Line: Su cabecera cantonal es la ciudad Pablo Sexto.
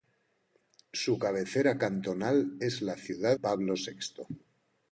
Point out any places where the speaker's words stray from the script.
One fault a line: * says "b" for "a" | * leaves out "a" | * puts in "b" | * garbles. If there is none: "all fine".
all fine